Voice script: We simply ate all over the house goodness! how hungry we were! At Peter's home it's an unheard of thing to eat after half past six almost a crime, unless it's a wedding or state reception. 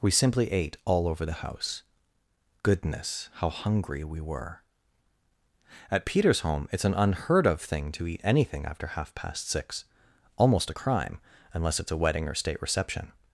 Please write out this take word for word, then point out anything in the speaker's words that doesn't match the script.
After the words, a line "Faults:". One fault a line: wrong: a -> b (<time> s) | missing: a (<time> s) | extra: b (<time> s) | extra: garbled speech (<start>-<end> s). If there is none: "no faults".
We simply ate all over the house goodness! how hungry we were! At Peter's home it's an unheard of thing to eat anything after half past six almost a crime, unless it's a wedding or state reception.
Faults:
extra: anything (8.2 s)